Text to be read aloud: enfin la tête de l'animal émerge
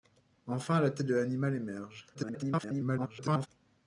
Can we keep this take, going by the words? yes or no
no